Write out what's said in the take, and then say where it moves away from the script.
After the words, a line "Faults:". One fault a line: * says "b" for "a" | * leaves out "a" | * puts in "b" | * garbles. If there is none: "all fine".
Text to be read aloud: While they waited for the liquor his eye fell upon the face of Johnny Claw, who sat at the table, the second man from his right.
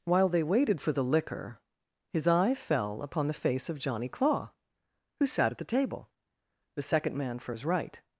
While they waited for the liquor his eye fell upon the face of Johnny Claw, who sat at the table, the second man for his right.
Faults:
* says "for" for "from"